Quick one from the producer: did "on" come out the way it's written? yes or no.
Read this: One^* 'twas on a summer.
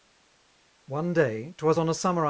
yes